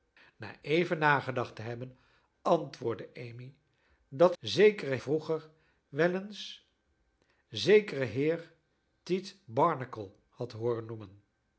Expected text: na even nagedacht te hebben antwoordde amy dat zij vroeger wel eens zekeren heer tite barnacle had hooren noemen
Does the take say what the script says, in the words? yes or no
no